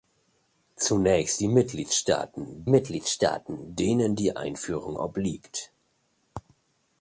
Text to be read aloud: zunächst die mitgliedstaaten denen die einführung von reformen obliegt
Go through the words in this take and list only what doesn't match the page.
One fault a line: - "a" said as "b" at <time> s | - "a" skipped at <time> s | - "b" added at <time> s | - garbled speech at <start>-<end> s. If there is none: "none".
- "mitgliedstaaten" added at 2.6 s
- "von reformen" skipped at 5.0 s